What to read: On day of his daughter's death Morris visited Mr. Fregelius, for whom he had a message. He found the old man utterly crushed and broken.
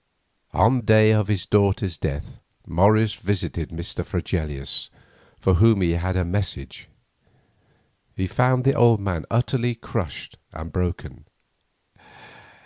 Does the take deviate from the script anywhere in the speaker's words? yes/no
no